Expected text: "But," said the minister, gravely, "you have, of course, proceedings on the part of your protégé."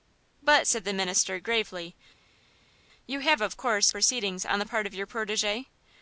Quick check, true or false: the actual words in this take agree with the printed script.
true